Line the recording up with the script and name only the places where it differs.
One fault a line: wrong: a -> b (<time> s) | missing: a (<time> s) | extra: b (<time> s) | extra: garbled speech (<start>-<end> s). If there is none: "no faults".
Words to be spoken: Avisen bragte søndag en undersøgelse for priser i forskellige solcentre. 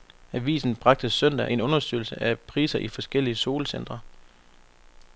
wrong: for -> af (2.2 s)